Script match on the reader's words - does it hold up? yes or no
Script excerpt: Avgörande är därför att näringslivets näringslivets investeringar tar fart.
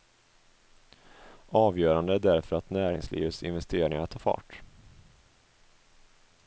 no